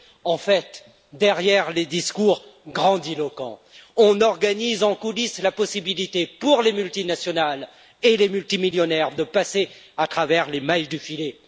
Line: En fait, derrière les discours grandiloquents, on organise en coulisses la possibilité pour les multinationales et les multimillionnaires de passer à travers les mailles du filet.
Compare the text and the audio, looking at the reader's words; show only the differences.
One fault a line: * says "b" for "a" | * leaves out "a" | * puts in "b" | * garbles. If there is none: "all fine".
all fine